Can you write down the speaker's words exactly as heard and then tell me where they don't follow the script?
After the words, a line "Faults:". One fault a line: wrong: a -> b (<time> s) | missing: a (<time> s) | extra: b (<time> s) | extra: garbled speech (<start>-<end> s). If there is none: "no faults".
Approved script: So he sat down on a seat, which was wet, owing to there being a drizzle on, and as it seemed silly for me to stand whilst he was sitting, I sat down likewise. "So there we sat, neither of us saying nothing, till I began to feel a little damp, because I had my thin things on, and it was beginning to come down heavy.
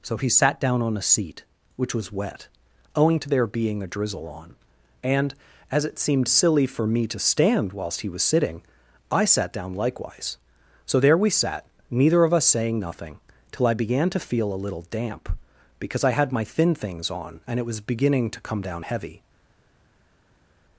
So he sat down on a seat, which was wet, owing to there being a drizzle on, and as it seemed silly for me to stand whilst he was sitting, I sat down likewise. "So there we sat, neither of us saying nothing, till I began to feel a little damp, because I had my thin things on, and it was beginning to come down heavy.
Faults:
no faults